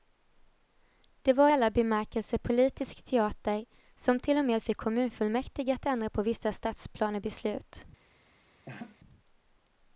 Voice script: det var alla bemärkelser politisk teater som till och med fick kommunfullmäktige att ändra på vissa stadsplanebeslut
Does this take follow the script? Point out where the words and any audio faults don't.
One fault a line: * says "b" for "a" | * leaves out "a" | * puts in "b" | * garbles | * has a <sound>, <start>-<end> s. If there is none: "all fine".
* has a laugh, 8.7-9.0 s